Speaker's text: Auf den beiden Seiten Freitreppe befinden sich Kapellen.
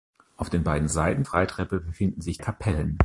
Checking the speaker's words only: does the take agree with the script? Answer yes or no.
yes